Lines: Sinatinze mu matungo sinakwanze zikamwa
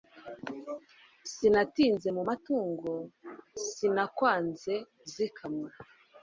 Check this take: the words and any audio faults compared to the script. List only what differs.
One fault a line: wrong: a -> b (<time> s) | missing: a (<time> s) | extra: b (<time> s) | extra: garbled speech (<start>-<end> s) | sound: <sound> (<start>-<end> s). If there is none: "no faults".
no faults